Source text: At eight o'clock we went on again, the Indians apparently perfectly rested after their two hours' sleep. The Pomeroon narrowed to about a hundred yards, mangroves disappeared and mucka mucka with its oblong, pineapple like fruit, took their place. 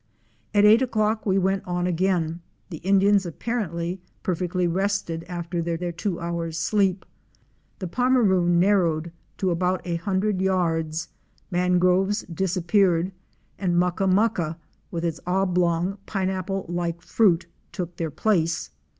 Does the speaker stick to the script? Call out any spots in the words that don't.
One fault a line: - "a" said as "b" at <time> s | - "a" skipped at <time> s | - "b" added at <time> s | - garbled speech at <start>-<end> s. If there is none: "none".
- "their" added at 5.8 s